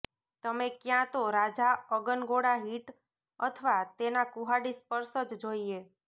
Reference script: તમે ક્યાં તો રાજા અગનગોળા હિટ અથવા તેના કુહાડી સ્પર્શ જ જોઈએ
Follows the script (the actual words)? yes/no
yes